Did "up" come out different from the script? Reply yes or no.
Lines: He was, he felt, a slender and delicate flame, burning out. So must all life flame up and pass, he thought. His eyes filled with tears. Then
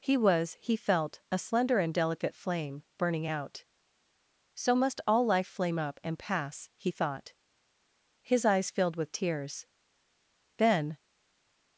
no